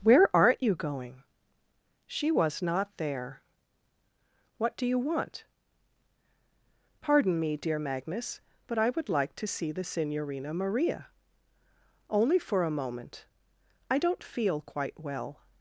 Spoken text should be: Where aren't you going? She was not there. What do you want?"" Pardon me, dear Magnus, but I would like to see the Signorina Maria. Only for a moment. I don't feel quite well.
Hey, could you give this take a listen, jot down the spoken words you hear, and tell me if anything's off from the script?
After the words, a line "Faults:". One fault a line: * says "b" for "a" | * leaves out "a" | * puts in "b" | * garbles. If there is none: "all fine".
Where aren't you going? She was not there. What do you want?"" Pardon me, dear Magnus, but I would like to see the Signorina Maria. Only for a moment. I don't feel quite well.
Faults:
all fine